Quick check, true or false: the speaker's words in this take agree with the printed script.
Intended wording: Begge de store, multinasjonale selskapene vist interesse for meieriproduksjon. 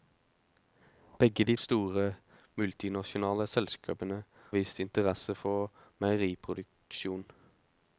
true